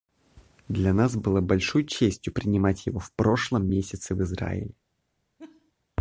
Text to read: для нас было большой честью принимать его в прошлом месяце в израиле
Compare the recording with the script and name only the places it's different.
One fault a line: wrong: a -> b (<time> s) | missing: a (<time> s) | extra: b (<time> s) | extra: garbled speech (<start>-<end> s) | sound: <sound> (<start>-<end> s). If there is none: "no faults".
sound: laugh (5.4-5.7 s)